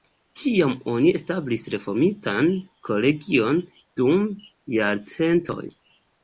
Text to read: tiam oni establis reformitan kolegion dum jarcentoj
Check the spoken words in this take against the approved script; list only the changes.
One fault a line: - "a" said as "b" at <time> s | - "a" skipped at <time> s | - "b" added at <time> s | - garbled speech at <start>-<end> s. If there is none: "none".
none